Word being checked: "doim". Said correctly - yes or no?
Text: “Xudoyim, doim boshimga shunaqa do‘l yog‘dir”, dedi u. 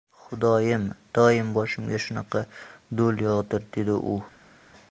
yes